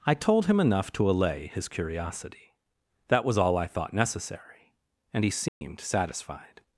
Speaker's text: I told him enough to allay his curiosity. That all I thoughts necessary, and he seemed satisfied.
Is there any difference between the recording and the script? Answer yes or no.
yes